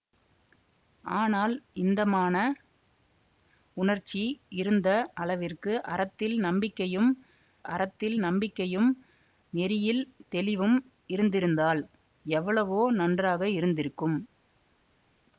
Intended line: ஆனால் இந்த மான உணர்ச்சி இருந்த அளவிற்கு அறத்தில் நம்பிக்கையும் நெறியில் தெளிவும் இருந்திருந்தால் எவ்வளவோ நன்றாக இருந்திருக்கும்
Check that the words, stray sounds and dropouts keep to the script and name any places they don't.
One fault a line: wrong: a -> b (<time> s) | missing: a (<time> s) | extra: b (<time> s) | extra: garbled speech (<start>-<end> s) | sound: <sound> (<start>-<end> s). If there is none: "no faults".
extra: அறத்தில் நம்பிக்கையும் (7.7 s)